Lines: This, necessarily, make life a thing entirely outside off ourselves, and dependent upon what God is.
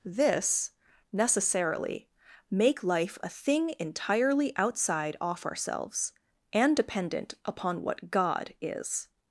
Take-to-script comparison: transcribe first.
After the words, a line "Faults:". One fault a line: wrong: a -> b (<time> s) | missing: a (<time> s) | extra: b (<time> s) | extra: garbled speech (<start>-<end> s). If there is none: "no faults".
This, necessarily, make life a thing entirely outside off ourselves, and dependent upon what God is.
Faults:
no faults